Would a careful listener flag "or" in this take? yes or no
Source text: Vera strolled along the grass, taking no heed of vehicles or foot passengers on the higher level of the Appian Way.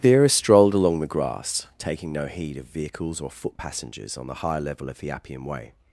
no